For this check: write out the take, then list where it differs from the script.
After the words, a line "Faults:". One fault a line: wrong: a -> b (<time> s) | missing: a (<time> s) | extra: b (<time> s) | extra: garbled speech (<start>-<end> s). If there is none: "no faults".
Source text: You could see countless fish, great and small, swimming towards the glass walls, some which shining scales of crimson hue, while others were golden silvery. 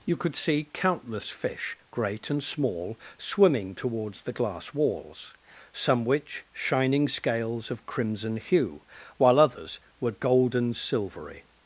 You could see countless fish, great and small, swimming towards the glass walls, some which shining scales of crimson hue, while others were golden silvery.
Faults:
no faults